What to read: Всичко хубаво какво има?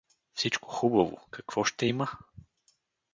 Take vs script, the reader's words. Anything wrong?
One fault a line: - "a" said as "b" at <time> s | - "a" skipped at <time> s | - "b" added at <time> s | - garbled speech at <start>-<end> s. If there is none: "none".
- "ще" added at 1.6 s